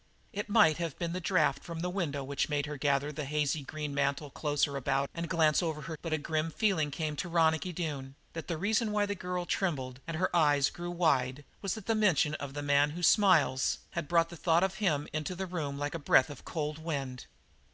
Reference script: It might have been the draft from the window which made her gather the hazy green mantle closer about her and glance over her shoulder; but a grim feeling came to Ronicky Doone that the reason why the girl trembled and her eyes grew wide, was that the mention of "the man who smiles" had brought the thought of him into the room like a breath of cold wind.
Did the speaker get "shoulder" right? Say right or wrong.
wrong